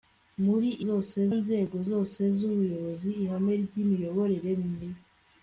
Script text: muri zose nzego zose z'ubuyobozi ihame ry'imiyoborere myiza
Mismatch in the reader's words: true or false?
false